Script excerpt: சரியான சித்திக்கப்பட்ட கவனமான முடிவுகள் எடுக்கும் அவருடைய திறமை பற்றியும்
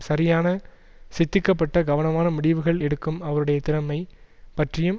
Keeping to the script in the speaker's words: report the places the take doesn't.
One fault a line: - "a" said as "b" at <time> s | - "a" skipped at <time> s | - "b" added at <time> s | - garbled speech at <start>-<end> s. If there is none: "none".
none